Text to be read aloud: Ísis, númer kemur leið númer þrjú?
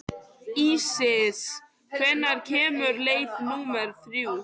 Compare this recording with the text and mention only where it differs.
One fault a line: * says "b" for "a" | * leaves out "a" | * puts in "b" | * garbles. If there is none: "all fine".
* says "hvenær" for "númer"